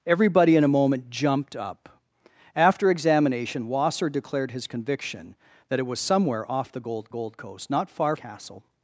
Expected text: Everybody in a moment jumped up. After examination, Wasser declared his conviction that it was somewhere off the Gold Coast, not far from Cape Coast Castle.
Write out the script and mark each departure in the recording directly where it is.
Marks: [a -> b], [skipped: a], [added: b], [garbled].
Everybody in a moment jumped up. After examination, Wasser declared his conviction that it was somewhere off the Gold [added: Gold] Coast, not far [skipped: from Cape Coast] Castle.